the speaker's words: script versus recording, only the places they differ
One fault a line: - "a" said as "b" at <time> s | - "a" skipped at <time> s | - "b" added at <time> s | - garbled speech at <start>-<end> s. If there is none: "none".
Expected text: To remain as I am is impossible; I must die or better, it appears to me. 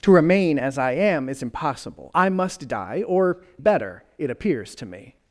none